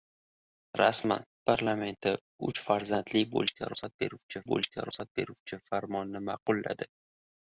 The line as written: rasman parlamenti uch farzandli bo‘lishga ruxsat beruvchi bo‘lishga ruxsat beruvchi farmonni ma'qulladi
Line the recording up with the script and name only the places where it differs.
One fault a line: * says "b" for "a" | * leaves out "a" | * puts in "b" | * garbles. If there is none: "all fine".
all fine